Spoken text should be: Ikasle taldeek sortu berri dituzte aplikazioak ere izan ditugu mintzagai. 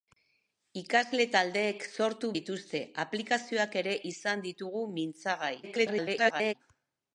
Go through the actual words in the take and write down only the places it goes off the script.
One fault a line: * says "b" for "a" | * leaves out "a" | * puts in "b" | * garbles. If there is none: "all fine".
* leaves out "berri"
* garbles